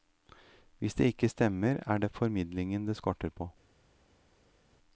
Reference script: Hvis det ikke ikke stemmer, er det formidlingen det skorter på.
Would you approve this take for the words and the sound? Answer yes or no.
no